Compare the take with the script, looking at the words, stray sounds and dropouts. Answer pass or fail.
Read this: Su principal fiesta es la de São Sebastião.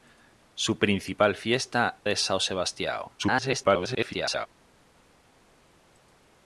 fail